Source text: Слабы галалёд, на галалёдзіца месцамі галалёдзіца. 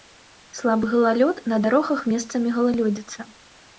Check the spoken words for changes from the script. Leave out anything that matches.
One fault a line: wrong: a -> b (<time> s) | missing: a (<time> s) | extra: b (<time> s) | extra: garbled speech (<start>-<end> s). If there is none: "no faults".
wrong: галалёдзіца -> дарогах (1.6 s)